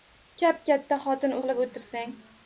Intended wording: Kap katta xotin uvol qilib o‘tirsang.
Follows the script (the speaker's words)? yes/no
no